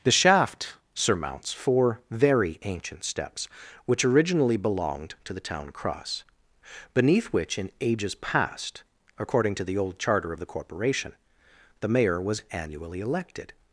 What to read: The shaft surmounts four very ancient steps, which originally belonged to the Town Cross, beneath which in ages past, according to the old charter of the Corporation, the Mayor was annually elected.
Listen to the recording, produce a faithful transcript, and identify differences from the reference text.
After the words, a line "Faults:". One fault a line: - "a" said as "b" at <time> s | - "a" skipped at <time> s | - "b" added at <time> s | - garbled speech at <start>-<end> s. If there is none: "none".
The shaft surmounts four very ancient steps, which originally belonged to the Town Cross, beneath which in ages past, according to the old charter of the Corporation, the Mayor was annually elected.
Faults:
none